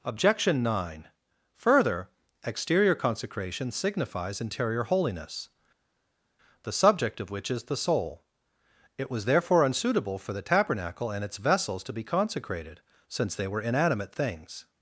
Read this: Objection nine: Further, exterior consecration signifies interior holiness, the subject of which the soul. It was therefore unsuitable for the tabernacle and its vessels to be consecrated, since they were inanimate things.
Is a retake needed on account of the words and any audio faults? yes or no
yes